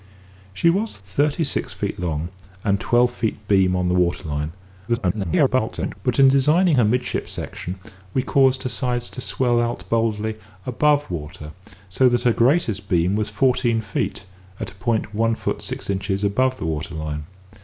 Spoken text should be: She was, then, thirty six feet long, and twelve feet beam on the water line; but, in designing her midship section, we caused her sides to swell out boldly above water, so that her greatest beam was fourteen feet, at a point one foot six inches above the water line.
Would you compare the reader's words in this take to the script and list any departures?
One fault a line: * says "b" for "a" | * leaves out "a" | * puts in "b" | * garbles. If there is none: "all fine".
* leaves out "then"
* garbles